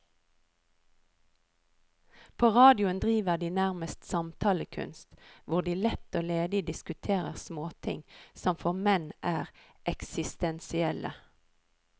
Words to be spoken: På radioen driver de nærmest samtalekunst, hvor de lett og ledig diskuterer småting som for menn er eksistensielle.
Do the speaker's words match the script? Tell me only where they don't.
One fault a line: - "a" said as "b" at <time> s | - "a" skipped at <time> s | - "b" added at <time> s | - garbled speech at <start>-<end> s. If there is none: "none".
none